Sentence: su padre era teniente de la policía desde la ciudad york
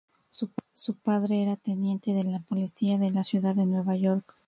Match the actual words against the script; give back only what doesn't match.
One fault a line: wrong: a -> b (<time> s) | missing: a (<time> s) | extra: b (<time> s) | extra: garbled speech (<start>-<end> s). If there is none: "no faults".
wrong: desde -> de (3.0 s)
extra: de nueva (3.5 s)